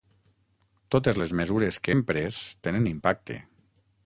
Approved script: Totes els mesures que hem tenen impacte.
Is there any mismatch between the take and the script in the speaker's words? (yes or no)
yes